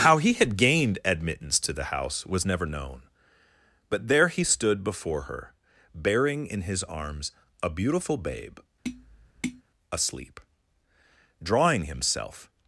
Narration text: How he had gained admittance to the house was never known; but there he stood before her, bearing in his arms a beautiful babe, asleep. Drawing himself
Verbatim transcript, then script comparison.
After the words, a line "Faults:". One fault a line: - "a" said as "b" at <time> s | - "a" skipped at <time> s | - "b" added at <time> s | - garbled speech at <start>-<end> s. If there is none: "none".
How he had gained admittance to the house was never known; but there he stood before her, bearing in his arms a beautiful babe, asleep. Drawing himself
Faults:
none